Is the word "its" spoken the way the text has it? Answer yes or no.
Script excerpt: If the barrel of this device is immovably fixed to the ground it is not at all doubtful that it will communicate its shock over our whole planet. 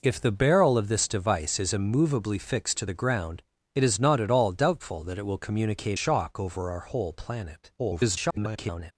no